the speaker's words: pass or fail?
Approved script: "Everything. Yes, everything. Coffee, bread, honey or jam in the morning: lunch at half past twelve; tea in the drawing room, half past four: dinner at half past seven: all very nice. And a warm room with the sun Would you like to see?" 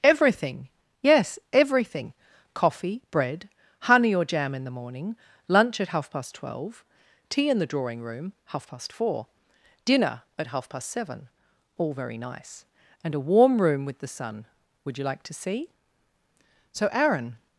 fail